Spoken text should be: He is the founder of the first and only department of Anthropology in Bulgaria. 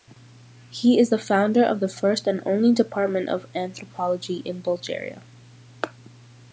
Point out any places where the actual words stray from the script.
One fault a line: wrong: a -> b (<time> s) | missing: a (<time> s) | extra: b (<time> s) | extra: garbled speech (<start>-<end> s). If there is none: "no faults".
no faults